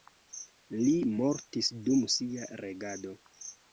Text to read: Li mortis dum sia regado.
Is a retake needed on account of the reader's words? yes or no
no